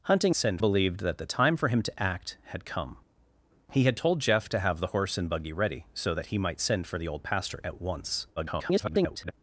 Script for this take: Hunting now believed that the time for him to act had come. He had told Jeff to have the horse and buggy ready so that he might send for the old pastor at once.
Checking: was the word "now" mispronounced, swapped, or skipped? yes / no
yes